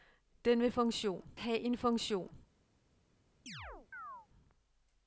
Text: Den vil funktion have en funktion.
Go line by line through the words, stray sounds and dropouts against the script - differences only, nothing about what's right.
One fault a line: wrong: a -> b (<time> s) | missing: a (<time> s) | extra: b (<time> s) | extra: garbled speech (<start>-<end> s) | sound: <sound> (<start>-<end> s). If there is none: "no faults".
sound: chirp (3.5-4.3 s)